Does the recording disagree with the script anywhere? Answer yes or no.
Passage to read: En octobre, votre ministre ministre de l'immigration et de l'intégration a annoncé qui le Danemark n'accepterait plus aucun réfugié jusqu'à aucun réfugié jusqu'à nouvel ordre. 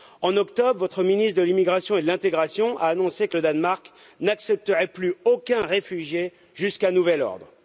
yes